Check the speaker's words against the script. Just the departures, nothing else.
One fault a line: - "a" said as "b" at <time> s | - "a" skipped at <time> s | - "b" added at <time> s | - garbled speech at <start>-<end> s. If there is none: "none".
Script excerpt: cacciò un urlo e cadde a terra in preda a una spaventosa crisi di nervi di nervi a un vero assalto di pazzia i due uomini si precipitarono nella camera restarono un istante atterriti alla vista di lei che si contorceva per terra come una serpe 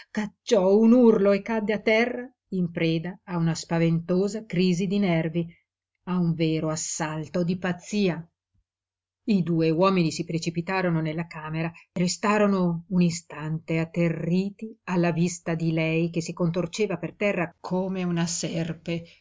- "di nervi" skipped at 5.5 s